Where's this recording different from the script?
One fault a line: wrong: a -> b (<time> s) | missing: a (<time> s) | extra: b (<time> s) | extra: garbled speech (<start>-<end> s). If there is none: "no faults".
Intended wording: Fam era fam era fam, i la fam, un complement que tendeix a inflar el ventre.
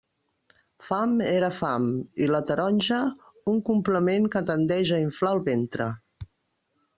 missing: era fam (1.9 s)
wrong: fam -> taronja (2.5 s)